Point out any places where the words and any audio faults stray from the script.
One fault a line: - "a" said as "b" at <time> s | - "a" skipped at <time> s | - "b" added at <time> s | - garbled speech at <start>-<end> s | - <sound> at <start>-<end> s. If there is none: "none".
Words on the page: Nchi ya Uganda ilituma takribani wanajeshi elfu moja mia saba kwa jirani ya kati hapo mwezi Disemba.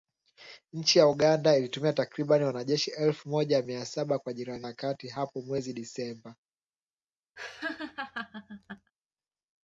- laugh at 7.4-8.9 s